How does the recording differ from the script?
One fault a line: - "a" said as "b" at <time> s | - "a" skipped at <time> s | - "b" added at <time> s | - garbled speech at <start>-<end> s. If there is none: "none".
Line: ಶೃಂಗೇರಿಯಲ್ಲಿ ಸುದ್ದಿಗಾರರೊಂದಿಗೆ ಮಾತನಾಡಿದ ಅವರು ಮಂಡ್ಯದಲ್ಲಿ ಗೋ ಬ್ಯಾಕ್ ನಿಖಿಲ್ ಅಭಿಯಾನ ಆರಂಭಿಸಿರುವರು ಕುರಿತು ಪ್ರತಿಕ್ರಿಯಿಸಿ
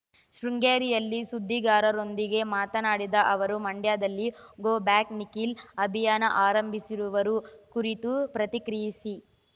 none